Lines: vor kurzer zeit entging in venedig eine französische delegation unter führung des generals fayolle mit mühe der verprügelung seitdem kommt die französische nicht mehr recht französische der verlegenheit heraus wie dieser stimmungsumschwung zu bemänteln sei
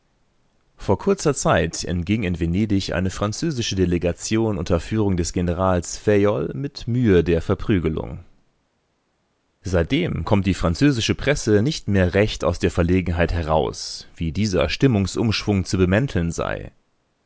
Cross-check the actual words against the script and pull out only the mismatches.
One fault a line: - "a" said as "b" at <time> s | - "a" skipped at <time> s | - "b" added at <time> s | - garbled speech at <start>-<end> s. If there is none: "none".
- "presse" added at 11.1 s
- "französische" said as "aus" at 12.4 s